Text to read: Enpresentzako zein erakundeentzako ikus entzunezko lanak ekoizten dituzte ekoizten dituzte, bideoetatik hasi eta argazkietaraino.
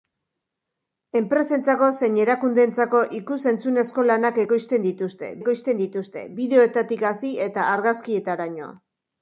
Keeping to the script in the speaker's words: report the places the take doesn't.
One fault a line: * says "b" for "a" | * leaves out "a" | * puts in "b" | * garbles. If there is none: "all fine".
all fine